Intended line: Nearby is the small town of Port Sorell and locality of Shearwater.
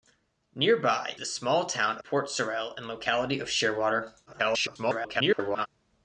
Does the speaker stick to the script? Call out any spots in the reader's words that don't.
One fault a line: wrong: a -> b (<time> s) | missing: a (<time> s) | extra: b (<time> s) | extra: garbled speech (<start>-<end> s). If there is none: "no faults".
missing: is (1.1 s)
missing: of (2.0 s)
extra: garbled speech (4.3-5.7 s)